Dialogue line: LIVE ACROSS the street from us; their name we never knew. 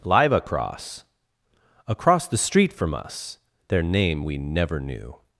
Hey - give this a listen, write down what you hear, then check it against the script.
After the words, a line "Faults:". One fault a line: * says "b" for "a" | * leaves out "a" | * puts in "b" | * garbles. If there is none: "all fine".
LIVE ACROSS ACROSS the street from us; their name we never knew.
Faults:
* puts in "ACROSS"